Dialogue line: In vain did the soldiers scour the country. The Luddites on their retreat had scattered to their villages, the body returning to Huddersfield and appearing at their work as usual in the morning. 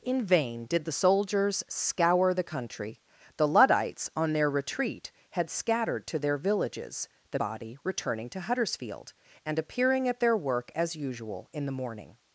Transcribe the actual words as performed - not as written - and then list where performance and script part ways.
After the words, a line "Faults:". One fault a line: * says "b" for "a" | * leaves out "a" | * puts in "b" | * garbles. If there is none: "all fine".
In vain did the soldiers scour the country. The Luddites on their retreat had scattered to their villages, the body returning to Huddersfield and appearing at their work as usual in the morning.
Faults:
all fine